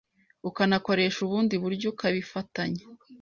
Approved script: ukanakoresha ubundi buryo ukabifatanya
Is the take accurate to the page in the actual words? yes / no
yes